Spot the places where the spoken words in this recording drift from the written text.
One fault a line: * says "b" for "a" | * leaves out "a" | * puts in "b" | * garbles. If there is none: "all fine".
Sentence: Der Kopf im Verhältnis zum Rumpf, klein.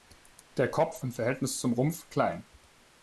all fine